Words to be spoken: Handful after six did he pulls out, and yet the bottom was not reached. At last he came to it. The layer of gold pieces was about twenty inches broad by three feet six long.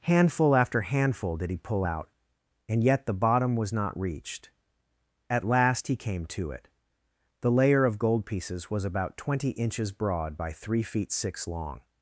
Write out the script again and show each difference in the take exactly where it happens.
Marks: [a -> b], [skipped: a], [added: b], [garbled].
Handful after [six -> handful] did he [pulls -> pull] out, and yet the bottom was not reached. At last he came to it. The layer of gold pieces was about twenty inches broad by three feet six long.